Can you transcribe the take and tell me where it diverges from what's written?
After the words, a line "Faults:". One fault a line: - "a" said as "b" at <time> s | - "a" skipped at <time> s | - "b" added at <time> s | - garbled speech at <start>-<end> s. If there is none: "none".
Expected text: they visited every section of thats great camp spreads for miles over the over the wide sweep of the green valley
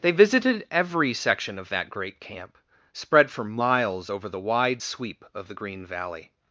they visited every section of that great camp spread for miles over the wide sweep of the green valley
Faults:
- "thats" said as "that" at 1.7 s
- "spreads" said as "spread" at 2.9 s
- "over the" skipped at 4.4 s